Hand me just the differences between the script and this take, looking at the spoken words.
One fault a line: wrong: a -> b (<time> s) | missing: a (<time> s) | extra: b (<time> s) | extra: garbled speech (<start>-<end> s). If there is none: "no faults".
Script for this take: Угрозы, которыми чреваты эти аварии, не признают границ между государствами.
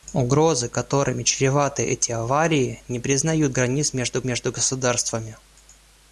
extra: между (4.2 s)